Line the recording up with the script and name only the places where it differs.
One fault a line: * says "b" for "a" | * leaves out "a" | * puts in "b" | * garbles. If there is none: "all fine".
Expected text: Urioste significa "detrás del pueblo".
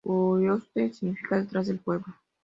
all fine